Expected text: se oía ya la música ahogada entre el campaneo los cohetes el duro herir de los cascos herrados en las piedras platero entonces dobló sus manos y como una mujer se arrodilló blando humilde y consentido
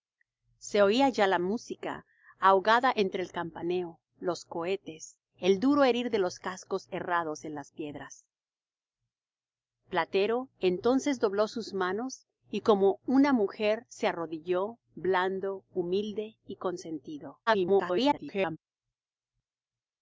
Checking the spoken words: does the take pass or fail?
fail